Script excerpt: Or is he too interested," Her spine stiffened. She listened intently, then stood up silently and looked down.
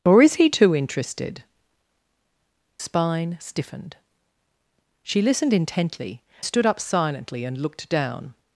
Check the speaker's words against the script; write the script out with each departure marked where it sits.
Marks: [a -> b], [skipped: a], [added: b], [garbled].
Or is he too interested," [skipped: Her] spine stiffened. She listened intently, [skipped: then] stood up silently and looked down.